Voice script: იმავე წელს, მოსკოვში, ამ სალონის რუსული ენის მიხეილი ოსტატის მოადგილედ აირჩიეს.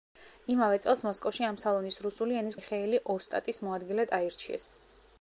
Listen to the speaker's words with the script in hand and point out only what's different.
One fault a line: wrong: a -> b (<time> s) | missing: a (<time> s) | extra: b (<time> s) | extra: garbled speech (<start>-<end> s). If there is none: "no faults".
no faults